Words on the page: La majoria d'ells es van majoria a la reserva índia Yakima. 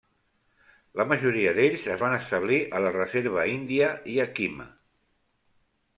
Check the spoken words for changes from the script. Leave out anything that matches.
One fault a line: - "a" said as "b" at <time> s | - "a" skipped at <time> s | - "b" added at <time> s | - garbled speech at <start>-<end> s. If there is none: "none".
- "majoria" said as "establir" at 2.2 s